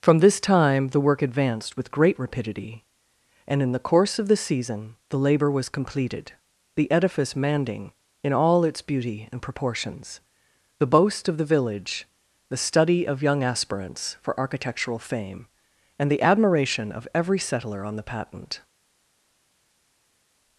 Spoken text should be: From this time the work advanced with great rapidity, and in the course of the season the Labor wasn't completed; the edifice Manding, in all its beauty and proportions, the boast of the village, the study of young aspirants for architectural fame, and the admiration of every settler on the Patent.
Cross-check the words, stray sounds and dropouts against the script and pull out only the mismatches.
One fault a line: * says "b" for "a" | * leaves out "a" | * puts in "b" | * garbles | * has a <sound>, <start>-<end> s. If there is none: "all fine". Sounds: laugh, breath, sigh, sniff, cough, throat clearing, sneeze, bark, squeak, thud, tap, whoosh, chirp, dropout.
* says "was" for "wasn't"